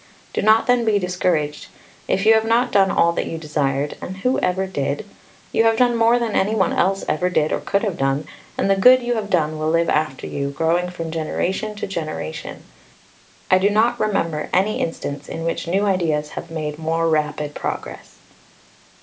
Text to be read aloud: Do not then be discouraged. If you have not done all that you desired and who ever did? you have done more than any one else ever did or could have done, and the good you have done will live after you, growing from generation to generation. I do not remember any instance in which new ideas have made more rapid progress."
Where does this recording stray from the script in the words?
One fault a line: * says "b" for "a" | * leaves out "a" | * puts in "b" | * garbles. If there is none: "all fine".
all fine